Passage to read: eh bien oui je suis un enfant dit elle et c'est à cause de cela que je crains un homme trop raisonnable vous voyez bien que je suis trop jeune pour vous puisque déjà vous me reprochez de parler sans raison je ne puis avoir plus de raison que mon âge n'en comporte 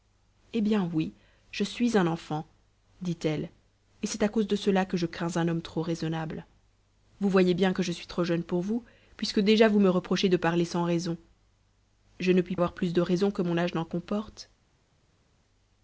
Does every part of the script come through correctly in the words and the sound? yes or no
yes